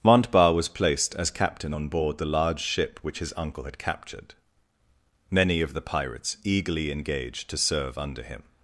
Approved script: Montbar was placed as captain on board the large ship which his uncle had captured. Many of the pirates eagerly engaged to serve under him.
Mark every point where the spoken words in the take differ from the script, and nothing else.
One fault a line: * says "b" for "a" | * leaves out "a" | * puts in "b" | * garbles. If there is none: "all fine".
all fine